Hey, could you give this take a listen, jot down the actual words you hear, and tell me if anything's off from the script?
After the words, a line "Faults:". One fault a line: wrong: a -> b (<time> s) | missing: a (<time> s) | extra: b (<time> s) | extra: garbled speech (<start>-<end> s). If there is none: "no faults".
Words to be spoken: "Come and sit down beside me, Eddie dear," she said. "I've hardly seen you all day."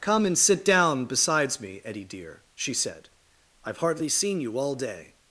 "Come and sit down besides me, Eddie dear," she said. "I've hardly seen you all day."
Faults:
wrong: beside -> besides (1.1 s)